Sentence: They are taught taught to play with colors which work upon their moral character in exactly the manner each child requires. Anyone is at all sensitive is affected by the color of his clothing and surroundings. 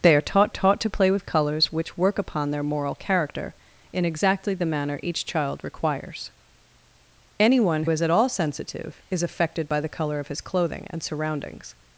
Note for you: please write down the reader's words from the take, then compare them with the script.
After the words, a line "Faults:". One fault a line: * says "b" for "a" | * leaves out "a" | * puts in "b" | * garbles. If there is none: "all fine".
They are taught taught to play with colors which work upon their moral character in exactly the manner each child requires. Anyone is at all sensitive is affected by the color of his clothing and surroundings.
Faults:
all fine